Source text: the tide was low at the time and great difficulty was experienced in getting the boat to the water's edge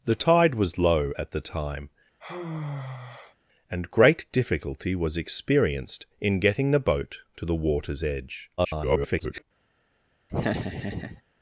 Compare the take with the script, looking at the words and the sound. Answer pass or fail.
fail